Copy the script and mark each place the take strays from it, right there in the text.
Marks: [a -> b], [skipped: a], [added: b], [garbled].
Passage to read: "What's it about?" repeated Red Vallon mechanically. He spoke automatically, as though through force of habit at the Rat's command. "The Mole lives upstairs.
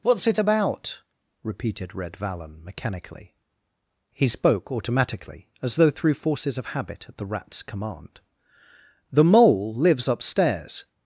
"What's it about?" repeated Red Vallon mechanically. He spoke automatically, as though through [force -> forces] of habit at the Rat's command. "The Mole lives upstairs.